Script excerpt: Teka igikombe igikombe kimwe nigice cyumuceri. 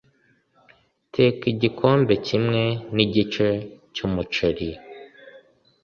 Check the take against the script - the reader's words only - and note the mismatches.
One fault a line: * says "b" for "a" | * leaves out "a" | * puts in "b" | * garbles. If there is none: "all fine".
* leaves out "igikombe"